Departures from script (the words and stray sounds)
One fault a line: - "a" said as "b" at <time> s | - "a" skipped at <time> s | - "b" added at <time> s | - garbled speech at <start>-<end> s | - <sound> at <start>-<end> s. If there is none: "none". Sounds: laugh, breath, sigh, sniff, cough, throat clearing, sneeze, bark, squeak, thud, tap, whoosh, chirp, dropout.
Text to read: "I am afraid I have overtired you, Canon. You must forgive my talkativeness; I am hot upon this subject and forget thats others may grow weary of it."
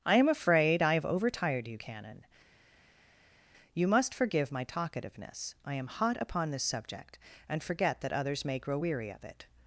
- "thats" said as "that" at 8.0 s